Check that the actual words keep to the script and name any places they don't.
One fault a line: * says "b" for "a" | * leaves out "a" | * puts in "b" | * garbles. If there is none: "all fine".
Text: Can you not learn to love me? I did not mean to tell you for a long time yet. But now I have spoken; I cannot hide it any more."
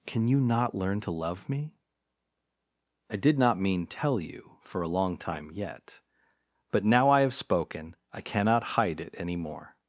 * leaves out "to"